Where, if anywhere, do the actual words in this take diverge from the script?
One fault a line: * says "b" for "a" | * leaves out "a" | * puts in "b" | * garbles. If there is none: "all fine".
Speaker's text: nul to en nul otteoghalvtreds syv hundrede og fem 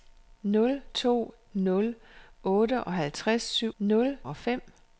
* leaves out "en"
* says "nul" for "hundrede"